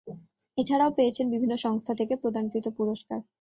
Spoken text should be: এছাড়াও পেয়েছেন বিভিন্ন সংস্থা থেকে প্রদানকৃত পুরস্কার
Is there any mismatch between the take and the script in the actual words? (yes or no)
no